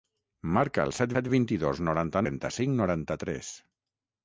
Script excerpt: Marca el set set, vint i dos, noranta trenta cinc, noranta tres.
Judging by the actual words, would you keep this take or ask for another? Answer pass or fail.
pass